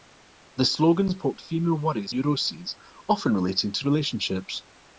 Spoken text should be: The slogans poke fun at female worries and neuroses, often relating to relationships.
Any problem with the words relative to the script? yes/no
yes